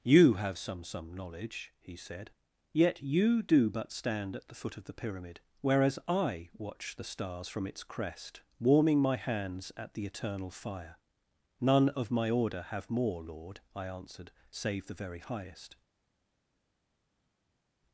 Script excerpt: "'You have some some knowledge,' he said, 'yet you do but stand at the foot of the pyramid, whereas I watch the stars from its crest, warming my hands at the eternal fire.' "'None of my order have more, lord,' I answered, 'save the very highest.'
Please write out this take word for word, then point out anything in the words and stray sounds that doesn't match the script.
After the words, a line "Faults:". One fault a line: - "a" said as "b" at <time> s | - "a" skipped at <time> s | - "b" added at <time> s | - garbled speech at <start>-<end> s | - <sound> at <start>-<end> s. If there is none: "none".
"'You have some some knowledge,' he said, 'yet you do but stand at the foot of the pyramid, whereas I watch the stars from its crest, warming my hands at the eternal fire.' "'None of my order have more, lord,' I answered, 'save the very highest.'
Faults:
none